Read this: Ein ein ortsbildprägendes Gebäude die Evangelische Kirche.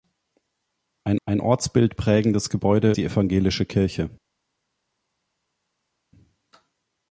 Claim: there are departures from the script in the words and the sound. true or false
false